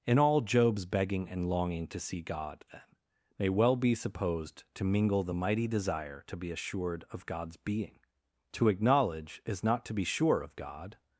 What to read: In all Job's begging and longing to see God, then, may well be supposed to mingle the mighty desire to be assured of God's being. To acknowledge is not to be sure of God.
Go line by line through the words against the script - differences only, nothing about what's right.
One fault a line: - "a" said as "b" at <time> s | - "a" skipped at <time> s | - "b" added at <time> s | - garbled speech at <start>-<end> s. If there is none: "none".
none